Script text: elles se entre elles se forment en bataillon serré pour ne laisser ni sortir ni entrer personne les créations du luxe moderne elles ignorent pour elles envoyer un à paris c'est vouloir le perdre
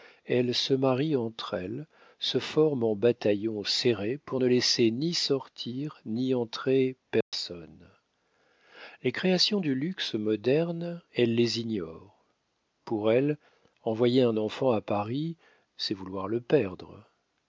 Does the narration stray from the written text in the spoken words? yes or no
yes